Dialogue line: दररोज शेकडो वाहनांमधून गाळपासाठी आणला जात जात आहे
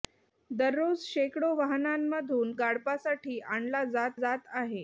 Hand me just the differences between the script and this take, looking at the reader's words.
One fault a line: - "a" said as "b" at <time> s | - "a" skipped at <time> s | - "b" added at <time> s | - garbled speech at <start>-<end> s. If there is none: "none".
none